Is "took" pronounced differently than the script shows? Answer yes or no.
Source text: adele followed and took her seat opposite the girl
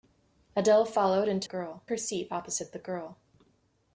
yes